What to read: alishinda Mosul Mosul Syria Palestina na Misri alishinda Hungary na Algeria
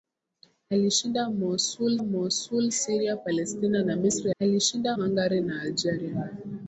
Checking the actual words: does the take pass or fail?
pass